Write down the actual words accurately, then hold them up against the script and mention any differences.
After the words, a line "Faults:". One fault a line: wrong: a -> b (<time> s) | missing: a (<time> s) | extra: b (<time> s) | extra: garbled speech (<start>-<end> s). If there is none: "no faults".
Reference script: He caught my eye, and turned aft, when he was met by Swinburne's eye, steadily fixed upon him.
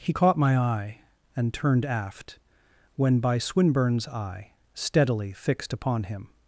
He caught my eye, and turned aft, when by Swinburne's eye, steadily fixed upon him.
Faults:
missing: he was met (3.2 s)